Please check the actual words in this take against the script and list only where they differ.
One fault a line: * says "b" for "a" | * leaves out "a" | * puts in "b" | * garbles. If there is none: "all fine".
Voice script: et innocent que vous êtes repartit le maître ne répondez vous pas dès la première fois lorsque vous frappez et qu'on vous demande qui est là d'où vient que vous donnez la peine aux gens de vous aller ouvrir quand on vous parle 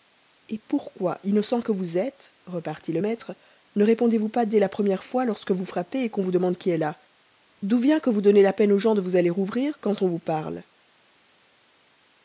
* puts in "pourquoi"